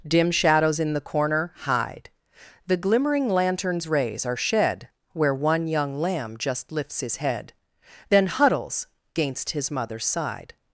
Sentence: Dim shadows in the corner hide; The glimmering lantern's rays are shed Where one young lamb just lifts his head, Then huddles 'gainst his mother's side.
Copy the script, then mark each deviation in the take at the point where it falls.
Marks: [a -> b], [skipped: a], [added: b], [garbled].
Dim shadows in the corner hide; The glimmering lantern's rays are shed Where one young lamb just lifts his head, Then huddles 'gainst his mother's side.